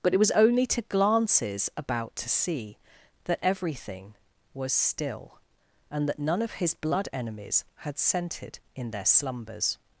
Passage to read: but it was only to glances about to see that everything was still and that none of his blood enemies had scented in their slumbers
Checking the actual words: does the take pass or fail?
pass